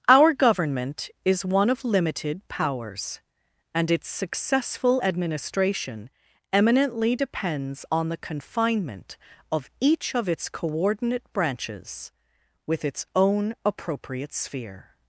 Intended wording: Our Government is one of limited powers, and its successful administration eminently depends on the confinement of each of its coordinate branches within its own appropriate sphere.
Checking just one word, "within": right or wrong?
wrong